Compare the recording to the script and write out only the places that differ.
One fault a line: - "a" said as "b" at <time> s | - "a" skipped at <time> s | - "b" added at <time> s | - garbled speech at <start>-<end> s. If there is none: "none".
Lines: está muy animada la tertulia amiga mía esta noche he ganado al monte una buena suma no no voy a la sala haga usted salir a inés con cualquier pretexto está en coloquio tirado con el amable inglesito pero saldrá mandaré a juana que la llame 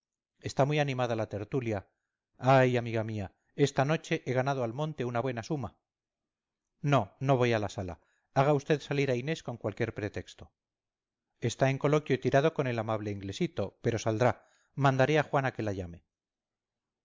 - "ay" added at 2.4 s